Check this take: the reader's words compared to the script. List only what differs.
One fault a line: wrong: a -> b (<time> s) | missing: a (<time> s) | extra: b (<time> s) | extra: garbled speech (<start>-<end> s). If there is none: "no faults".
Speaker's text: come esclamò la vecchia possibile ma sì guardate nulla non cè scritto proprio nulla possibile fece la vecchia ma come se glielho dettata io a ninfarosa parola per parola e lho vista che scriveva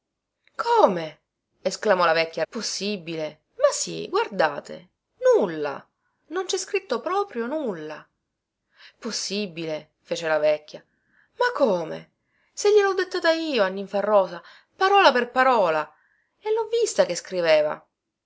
no faults